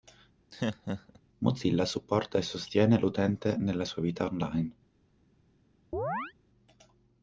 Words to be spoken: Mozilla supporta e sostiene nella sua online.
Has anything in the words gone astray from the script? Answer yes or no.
yes